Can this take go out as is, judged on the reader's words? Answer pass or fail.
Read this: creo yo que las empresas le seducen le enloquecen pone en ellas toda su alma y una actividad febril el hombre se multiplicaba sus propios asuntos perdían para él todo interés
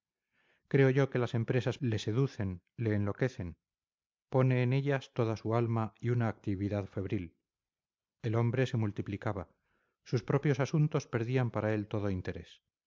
pass